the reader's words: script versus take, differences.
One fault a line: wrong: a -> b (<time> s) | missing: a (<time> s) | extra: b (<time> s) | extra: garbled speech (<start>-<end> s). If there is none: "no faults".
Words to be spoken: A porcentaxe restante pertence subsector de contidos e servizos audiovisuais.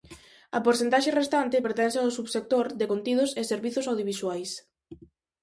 extra: ao (2.0 s)